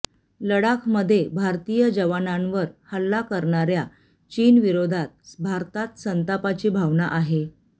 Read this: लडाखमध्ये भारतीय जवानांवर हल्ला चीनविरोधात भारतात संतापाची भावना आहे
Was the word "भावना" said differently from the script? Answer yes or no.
no